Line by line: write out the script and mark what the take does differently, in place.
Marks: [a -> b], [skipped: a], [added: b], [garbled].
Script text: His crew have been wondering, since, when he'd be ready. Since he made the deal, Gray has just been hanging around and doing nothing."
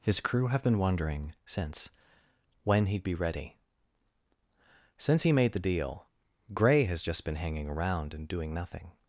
His crew have been wondering, since, when he'd be ready. Since he made the deal, Gray has just been hanging around and doing nothing."